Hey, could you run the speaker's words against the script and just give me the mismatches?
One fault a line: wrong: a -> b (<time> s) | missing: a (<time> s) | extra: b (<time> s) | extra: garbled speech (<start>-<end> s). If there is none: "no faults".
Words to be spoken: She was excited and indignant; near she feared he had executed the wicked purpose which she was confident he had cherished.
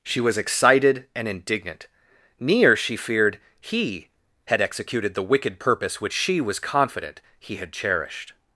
no faults